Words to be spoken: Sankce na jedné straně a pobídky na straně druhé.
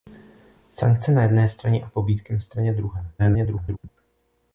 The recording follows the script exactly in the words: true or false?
false